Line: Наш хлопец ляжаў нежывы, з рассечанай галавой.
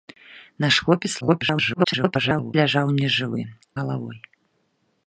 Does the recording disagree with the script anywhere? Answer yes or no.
yes